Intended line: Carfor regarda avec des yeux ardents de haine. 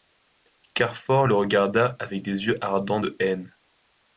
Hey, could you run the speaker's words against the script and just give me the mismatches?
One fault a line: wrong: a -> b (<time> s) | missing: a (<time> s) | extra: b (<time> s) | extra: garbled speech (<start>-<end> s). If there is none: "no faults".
extra: le (1.2 s)